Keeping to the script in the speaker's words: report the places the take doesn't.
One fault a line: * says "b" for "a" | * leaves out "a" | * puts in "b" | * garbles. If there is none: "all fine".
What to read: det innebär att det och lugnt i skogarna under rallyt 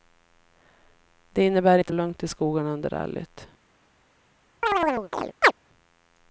all fine